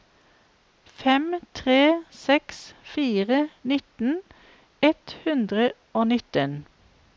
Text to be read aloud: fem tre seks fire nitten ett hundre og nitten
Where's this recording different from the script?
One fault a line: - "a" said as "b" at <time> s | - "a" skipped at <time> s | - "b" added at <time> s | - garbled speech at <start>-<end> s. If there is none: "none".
none